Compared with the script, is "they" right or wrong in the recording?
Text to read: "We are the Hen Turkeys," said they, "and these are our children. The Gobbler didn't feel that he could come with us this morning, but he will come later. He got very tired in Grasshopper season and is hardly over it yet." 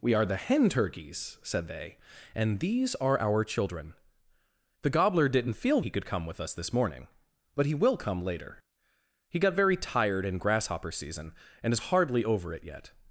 right